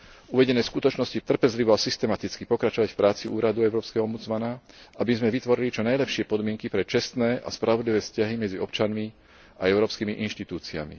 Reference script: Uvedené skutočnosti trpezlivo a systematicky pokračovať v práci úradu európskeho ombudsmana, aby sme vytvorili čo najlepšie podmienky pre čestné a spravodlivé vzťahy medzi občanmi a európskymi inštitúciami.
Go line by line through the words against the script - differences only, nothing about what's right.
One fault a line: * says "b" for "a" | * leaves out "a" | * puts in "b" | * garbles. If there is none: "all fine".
all fine